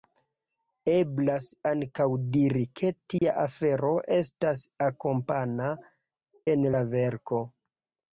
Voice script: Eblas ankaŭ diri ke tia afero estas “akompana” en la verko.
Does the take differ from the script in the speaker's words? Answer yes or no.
no